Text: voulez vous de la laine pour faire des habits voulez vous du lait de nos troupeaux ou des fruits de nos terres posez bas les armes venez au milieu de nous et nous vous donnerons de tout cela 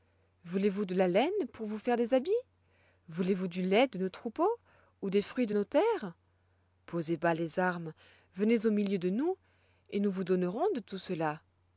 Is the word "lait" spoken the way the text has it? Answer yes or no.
yes